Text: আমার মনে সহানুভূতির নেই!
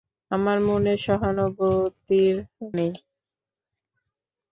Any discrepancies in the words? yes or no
no